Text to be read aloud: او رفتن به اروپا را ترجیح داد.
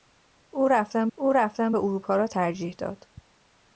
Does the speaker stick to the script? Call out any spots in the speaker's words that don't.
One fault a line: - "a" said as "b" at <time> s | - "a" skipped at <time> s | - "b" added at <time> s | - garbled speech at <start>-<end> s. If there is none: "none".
- "او رفتن" added at 1.2 s